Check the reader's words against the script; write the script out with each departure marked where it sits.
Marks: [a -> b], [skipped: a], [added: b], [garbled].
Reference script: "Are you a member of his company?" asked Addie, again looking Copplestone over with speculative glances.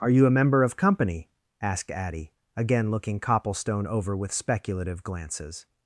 "Are you a member of [skipped: his] company?" asked Addie, again looking Copplestone over with speculative glances.